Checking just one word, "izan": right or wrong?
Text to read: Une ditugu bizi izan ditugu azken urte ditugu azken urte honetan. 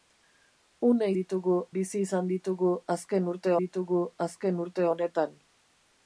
right